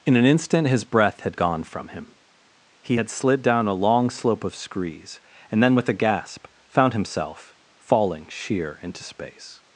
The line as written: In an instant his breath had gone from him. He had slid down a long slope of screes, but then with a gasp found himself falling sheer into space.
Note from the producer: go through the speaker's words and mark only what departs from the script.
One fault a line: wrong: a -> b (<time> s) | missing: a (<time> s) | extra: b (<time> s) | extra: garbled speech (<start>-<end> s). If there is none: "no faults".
wrong: but -> and (5.5 s)